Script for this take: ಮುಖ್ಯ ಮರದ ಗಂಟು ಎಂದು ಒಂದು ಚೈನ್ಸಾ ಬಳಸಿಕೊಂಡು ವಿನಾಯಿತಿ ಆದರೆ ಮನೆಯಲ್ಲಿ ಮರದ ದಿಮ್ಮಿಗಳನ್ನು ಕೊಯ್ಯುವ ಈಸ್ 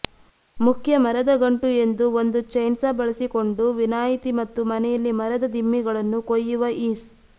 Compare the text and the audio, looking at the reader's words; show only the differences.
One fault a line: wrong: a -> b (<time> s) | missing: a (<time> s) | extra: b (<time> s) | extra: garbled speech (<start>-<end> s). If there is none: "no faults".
wrong: ಆದರೆ -> ಮತ್ತು (4.4 s)